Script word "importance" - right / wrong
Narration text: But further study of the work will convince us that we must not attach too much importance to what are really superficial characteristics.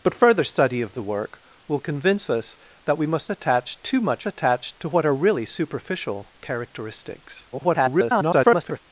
wrong